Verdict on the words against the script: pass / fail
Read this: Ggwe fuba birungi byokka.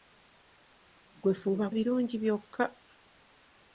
pass